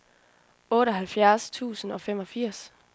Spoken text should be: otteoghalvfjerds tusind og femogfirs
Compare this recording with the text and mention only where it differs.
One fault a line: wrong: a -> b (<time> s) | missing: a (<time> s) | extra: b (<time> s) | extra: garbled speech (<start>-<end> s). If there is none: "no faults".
no faults